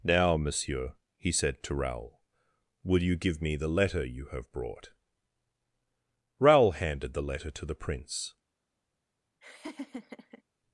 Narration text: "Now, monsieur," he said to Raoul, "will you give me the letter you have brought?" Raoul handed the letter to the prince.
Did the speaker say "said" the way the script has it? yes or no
yes